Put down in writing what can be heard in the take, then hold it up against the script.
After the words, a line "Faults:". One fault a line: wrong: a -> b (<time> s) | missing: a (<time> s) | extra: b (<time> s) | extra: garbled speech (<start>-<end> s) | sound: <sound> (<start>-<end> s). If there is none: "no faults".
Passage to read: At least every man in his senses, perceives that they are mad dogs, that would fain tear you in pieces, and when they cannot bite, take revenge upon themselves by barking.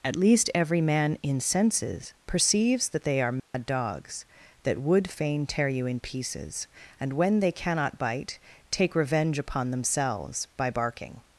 At least every man in senses, perceives that they are mad dogs, that would fain tear you in pieces, and when they cannot bite, take revenge upon themselves by barking.
Faults:
missing: his (1.4 s)
sound: dropout (3.4-3.5 s)